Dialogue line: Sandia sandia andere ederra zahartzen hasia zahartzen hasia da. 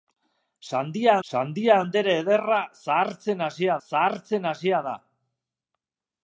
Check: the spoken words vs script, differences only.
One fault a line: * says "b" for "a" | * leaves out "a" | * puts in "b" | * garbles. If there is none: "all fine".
all fine